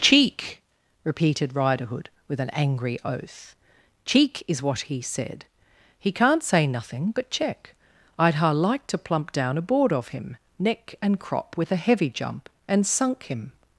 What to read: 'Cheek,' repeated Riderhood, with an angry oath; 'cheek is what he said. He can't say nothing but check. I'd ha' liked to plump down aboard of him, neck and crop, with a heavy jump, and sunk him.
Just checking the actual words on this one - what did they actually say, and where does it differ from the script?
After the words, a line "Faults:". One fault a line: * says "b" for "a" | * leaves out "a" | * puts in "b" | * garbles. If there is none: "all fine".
'Cheek,' repeated Riderhood, with an angry oath; 'cheek is what he said. He can't say nothing but check. I'd ha' liked to plump down aboard of him, neck and crop, with a heavy jump, and sunk him.
Faults:
all fine